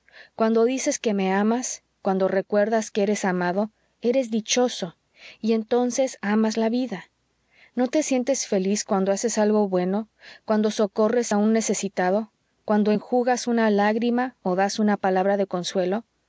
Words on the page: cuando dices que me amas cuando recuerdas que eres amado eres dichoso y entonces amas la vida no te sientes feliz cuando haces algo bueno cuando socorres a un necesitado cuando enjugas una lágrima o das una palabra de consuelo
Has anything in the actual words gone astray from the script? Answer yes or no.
no